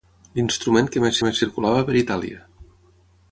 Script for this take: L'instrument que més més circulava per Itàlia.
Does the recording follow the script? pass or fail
pass